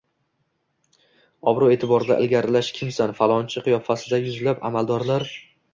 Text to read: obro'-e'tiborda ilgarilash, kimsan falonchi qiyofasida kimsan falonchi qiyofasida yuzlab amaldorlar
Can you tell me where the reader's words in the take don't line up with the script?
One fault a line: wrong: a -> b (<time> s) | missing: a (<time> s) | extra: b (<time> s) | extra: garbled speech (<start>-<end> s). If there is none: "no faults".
missing: kimsan falonchi qiyofasida (4.3 s)